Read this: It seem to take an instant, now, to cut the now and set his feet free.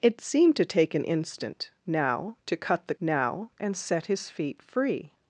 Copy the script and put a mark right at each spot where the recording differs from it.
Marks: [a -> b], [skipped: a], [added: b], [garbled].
It seem to take an instant, now, to cut the now and set his feet free.